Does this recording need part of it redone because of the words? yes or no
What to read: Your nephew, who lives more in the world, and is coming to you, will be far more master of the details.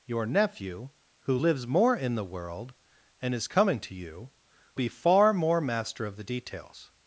yes